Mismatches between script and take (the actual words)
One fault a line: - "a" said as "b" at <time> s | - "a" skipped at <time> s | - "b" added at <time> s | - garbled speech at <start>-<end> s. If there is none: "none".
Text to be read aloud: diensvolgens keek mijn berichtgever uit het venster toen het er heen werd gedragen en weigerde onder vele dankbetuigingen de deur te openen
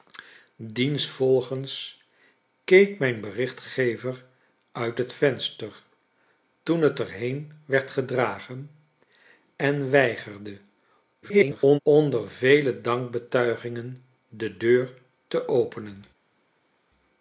- garbled speech at 11.2-11.8 s